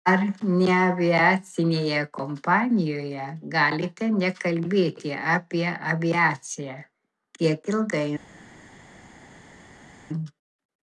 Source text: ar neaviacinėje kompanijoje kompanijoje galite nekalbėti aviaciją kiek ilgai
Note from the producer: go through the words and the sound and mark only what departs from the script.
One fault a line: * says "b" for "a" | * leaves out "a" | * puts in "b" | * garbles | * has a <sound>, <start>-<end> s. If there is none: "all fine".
* leaves out "kompanijoje"
* puts in "apie"